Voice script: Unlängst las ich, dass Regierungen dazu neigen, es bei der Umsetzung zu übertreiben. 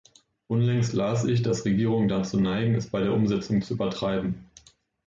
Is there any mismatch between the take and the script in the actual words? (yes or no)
no